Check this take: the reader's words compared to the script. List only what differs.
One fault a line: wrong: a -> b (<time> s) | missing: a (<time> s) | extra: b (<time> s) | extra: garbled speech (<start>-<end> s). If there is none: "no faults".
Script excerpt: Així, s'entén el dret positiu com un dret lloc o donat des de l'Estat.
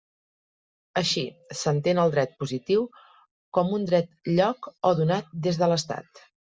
no faults